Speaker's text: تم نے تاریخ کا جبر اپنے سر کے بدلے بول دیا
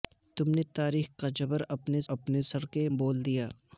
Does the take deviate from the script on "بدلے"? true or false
true